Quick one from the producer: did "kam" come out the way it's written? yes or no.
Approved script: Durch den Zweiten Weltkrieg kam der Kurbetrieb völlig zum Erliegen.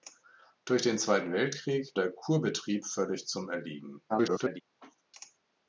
no